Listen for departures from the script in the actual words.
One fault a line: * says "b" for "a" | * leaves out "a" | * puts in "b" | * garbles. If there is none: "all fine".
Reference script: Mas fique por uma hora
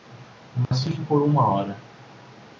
all fine